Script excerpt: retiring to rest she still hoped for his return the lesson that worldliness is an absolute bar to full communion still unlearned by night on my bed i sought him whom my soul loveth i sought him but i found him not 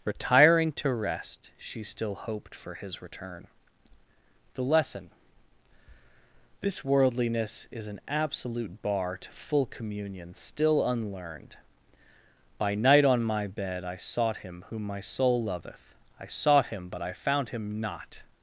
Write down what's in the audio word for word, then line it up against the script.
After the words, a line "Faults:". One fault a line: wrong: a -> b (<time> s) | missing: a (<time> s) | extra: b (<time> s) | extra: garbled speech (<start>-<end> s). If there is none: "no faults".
retiring to rest she still hoped for his return the lesson this worldliness is an absolute bar to full communion still unlearned by night on my bed i sought him whom my soul loveth i sought him but i found him not
Faults:
wrong: that -> this (6.6 s)